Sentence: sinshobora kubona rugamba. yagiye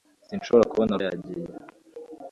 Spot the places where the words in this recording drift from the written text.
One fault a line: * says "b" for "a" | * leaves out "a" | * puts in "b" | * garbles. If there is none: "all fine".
* leaves out "rugamba"